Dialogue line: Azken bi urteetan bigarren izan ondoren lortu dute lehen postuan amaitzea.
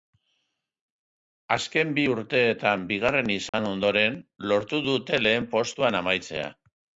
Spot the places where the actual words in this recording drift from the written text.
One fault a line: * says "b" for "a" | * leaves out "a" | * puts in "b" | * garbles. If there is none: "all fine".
all fine